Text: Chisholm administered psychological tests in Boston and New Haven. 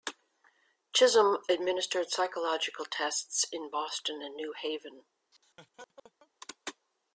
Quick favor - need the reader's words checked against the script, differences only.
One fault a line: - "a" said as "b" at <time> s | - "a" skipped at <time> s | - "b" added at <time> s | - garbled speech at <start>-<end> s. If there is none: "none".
none